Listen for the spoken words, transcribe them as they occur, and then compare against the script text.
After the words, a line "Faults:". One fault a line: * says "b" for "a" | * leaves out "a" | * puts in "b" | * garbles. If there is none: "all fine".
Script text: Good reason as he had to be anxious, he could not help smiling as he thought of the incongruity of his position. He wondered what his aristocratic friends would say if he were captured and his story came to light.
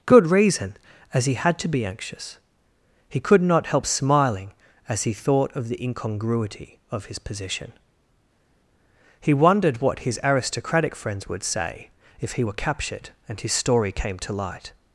Good reason as he had to be anxious, he could not help smiling as he thought of the incongruity of his position. He wondered what his aristocratic friends would say if he were captured and his story came to light.
Faults:
all fine